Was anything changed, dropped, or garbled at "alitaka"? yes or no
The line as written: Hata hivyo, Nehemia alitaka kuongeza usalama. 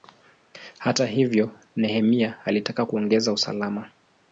no